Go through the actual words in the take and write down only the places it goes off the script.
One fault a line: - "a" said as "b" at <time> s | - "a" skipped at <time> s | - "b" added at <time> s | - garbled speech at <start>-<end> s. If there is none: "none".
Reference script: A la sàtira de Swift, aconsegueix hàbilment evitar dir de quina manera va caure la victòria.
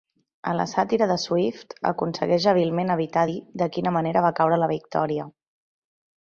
none